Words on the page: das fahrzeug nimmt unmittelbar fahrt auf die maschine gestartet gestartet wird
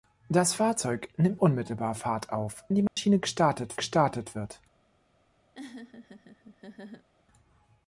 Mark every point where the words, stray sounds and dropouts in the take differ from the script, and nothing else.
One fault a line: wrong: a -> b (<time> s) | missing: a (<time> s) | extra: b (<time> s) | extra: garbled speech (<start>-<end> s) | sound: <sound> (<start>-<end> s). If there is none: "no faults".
sound: dropout (2.9-3.0 s)
sound: laugh (5.5-7.1 s)